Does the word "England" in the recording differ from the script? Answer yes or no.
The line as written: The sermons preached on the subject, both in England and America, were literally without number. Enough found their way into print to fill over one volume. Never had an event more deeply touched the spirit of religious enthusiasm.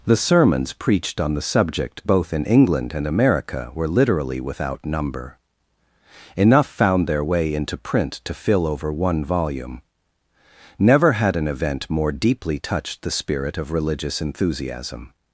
no